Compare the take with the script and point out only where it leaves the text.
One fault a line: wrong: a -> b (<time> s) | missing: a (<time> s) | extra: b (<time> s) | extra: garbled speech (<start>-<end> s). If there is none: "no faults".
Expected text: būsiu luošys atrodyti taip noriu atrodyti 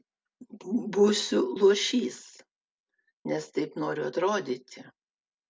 wrong: atrodyti -> nes (3.3 s)